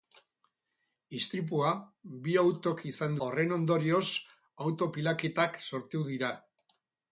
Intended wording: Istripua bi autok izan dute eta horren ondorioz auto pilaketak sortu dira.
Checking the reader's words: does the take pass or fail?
fail